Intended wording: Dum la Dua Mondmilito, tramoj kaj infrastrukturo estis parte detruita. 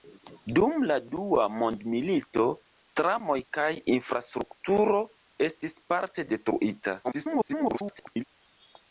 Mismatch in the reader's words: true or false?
true